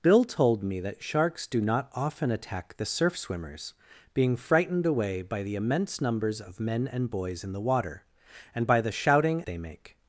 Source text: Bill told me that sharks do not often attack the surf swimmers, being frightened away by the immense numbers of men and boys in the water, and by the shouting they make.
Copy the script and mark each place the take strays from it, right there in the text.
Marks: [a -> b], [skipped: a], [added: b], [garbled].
Bill told me that sharks do not often attack the surf swimmers, being frightened away by the immense numbers of men and boys in the water, and by the shouting they make.